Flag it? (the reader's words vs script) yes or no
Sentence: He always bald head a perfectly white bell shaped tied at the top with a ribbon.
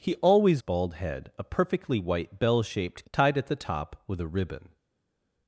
no